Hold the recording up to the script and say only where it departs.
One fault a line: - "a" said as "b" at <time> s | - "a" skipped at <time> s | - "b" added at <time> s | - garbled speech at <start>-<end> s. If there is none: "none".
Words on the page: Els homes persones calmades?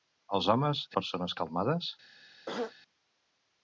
none